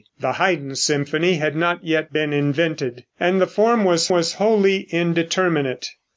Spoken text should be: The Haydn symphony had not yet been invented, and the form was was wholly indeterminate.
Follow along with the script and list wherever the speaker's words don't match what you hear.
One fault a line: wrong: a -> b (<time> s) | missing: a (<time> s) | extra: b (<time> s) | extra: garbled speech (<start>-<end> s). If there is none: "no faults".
no faults